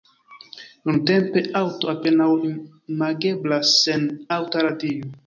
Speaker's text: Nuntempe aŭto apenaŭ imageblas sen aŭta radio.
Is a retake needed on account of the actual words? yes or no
no